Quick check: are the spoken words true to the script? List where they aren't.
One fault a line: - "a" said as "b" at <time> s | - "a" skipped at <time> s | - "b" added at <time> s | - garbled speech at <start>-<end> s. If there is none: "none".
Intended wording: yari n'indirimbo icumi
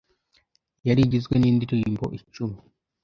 - "igizwe" added at 1.1 s